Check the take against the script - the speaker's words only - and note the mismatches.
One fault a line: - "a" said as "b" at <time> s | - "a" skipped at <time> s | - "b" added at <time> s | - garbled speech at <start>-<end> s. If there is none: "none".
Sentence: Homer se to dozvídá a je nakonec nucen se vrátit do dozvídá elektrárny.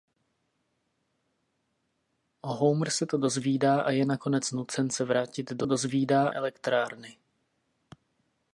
none